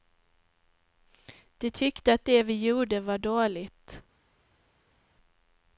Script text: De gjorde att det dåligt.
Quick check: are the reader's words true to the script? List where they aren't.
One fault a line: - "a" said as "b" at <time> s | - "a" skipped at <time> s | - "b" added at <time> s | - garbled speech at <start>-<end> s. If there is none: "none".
- "gjorde" said as "tyckte" at 1.7 s
- "vi gjorde var" added at 2.4 s